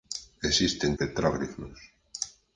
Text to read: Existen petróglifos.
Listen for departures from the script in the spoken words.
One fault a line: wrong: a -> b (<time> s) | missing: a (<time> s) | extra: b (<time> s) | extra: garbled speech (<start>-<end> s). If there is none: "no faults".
no faults